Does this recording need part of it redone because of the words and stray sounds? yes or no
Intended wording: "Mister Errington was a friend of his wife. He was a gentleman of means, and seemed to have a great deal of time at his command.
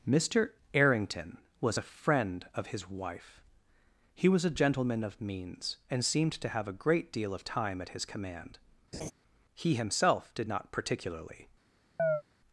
yes